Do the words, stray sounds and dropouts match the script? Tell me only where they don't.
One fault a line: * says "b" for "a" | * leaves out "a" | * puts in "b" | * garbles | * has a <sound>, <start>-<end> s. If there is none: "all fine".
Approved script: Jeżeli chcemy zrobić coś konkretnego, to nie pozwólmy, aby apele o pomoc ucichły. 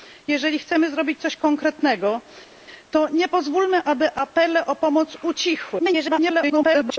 * garbles